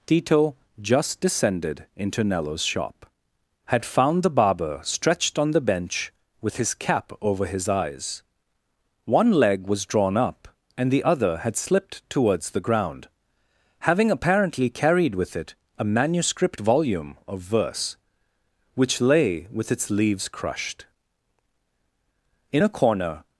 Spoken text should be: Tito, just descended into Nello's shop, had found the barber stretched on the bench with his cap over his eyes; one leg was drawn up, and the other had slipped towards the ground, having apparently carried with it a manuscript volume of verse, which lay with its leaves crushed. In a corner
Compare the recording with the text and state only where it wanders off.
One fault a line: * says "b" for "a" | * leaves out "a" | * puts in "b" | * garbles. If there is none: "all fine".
all fine